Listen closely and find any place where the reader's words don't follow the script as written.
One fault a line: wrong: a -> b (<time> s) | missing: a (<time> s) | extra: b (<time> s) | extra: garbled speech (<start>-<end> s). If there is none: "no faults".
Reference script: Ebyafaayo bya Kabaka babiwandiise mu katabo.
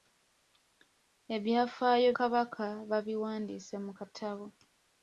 missing: bya (2.1 s)